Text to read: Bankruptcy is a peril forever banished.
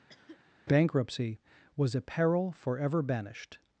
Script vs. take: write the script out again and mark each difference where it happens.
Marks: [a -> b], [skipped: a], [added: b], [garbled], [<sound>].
[cough] Bankruptcy [is -> was] a peril forever banished.